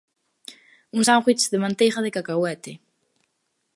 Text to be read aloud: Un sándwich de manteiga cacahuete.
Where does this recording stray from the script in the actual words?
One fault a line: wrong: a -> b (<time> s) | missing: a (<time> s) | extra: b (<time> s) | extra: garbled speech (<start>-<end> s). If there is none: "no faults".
extra: de (2.0 s)